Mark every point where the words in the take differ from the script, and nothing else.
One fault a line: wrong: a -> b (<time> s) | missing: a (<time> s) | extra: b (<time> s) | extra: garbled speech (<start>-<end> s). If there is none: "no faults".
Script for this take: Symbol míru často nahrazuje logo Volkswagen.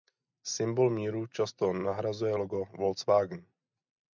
no faults